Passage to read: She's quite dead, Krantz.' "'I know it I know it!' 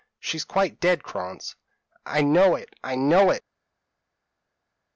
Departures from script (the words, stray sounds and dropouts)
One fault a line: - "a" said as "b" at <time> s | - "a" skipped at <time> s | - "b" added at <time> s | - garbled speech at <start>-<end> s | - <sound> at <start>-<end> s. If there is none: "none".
none